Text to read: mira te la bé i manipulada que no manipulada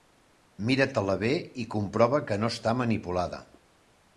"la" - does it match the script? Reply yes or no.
yes